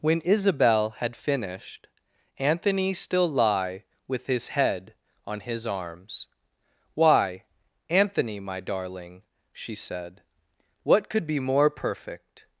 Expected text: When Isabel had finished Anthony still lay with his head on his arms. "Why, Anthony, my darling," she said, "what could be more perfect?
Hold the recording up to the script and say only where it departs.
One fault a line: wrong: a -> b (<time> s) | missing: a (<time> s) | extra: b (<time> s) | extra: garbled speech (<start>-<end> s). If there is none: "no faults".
wrong: lay -> lie (3.3 s)